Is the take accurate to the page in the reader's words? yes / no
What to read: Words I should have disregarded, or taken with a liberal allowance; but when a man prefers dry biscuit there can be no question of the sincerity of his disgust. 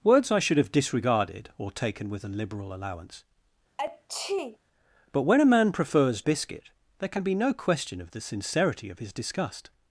no